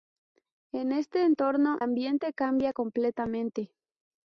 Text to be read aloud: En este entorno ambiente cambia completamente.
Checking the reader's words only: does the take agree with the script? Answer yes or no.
yes